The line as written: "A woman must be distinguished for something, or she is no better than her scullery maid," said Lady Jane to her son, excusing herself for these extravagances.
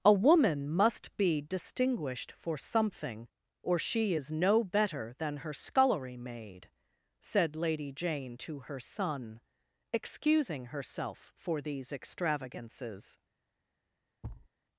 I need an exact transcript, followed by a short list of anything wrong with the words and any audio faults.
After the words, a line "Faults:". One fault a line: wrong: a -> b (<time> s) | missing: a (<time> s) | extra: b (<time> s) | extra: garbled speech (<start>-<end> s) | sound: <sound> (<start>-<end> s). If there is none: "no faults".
"A woman must be distinguished for something, or she is no better than her scullery maid," said Lady Jane to her son, excusing herself for these extravagances.
Faults:
sound: thud (14.2-14.5 s)